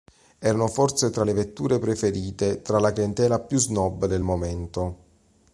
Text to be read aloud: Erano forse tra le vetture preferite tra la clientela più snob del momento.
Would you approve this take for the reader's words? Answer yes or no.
yes